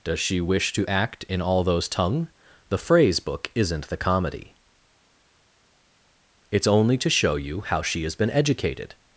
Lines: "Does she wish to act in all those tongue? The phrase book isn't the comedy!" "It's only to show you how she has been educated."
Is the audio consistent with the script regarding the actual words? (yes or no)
yes